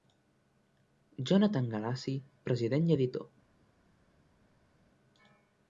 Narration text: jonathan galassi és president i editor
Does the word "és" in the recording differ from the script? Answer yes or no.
yes